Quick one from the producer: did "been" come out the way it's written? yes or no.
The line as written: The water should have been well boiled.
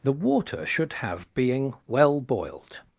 no